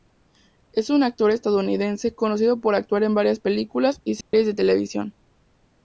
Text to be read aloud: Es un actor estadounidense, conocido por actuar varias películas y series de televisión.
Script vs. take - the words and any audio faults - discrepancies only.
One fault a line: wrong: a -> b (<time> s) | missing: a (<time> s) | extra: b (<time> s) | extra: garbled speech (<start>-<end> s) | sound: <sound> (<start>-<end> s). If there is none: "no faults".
extra: en (3.0 s)
sound: dropout (4.2-4.3 s)